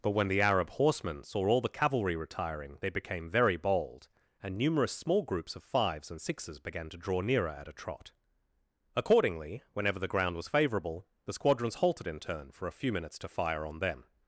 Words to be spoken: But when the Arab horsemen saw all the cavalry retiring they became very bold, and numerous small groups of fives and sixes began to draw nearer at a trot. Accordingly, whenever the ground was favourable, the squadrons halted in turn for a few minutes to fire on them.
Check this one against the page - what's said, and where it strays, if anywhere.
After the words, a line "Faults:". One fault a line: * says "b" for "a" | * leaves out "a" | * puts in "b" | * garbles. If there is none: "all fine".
But when the Arab horsemen saw all the cavalry retiring they became very bold, and numerous small groups of fives and sixes began to draw nearer at a trot. Accordingly, whenever the ground was favourable, the squadrons halted in turn for a few minutes to fire on them.
Faults:
all fine